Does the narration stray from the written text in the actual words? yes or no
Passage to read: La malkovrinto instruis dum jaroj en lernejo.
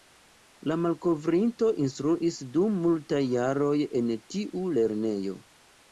yes